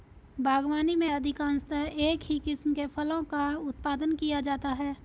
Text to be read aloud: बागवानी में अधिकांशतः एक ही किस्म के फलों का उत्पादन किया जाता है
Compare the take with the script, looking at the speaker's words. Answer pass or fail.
pass